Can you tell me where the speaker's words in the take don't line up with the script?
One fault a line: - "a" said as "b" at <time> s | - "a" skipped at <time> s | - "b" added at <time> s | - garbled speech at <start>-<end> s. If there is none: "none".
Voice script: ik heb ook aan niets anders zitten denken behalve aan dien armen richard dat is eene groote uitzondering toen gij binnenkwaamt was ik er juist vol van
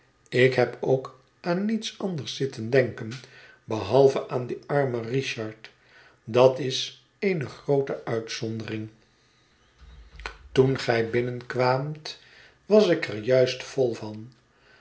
none